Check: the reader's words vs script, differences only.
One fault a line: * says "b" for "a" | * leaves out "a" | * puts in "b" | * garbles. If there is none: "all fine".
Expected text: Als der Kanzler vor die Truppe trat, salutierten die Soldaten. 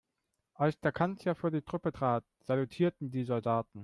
all fine